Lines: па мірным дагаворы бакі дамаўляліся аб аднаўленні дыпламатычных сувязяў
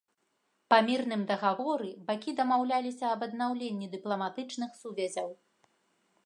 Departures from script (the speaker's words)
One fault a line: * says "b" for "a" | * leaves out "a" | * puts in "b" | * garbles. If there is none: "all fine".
all fine